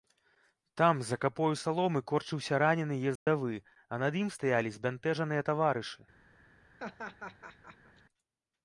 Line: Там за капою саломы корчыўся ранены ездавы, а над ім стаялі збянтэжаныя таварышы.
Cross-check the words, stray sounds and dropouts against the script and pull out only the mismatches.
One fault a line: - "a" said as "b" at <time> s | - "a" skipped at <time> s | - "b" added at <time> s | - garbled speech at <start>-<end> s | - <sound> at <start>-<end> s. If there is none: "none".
- dropout at 3.2-3.3 s
- laugh at 6.8-8.0 s